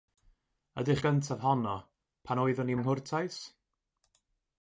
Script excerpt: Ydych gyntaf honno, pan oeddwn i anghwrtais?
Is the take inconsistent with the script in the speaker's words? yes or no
no